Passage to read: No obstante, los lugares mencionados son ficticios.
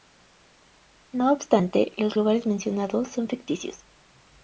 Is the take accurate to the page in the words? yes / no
yes